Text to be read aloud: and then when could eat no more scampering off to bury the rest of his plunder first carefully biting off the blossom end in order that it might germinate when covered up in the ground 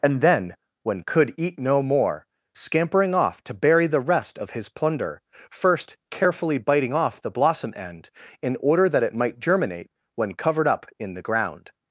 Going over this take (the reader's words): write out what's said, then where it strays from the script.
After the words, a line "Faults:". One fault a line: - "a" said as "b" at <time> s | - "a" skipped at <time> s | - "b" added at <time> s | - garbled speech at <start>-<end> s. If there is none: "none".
and then when could eat no more scampering off to bury the rest of his plunder first carefully biting off the blossom end in order that it might germinate when covered up in the ground
Faults:
none